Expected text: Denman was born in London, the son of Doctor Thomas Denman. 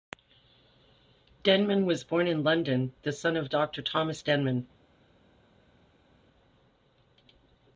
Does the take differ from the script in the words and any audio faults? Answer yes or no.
no